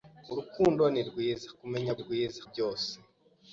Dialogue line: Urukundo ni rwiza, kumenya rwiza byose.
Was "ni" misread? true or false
false